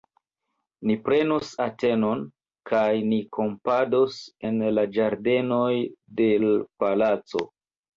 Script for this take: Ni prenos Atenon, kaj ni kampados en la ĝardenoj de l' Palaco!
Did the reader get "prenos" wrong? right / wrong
right